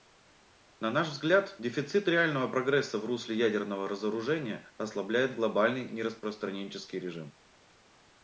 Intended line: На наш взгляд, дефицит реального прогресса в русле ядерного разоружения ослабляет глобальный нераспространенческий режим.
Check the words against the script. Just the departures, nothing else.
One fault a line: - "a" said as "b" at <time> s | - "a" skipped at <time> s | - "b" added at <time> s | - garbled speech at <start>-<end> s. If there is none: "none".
none